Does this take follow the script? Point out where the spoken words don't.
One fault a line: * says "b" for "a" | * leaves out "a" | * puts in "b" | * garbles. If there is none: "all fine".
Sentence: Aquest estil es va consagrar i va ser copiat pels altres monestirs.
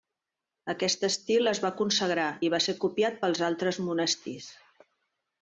all fine